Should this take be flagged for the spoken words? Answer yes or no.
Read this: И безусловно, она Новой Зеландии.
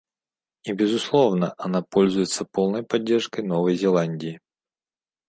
yes